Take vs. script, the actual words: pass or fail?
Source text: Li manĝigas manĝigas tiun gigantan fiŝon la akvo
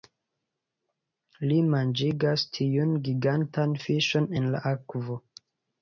fail